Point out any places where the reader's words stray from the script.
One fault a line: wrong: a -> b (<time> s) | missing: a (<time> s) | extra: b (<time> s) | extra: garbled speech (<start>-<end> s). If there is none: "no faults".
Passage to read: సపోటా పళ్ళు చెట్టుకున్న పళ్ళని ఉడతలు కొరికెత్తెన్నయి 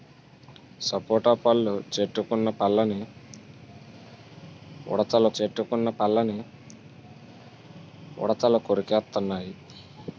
extra: చెట్టుకున్న పళ్ళని ఉడతలు (5.4 s)